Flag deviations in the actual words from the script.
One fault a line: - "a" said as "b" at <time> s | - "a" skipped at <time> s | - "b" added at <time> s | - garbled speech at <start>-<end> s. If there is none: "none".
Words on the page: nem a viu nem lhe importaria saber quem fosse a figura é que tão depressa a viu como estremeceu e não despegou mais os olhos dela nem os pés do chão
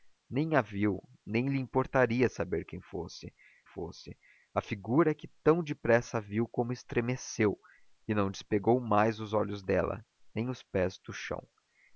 - "fosse" added at 3.6 s